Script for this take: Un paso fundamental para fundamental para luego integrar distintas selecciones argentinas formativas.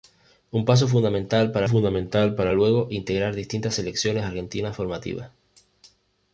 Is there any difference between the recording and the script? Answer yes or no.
no